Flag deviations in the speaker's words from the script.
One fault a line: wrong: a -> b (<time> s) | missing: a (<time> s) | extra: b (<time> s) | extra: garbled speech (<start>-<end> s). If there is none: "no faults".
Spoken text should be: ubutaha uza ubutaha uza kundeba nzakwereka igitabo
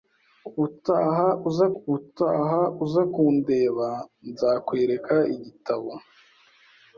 no faults